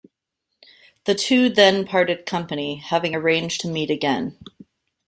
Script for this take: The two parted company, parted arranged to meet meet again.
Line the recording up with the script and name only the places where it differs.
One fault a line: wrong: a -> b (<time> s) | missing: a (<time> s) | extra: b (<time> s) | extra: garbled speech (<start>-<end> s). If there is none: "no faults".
extra: then (1.5 s)
wrong: parted -> having (2.8 s)
missing: meet (3.9 s)